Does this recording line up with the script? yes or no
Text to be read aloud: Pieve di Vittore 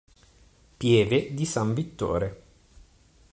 no